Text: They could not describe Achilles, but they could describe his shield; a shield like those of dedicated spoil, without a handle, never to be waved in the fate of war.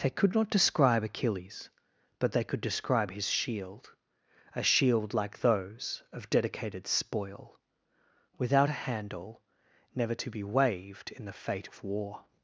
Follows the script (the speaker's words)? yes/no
yes